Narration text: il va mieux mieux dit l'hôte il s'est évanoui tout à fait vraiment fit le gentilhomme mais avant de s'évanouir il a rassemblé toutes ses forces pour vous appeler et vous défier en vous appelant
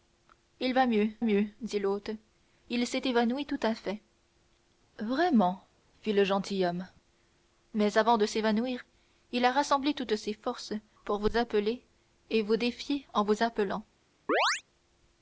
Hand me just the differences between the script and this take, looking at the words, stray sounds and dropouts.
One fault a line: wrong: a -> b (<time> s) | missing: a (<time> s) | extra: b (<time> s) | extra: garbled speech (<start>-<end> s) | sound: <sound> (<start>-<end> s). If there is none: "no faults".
sound: chirp (14.3-14.6 s)